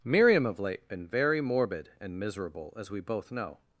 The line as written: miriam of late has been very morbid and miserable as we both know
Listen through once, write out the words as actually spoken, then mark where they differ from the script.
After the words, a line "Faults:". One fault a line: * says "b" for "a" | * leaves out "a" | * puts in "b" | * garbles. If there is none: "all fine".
miriam of late been very morbid and miserable as we both know
Faults:
* leaves out "has"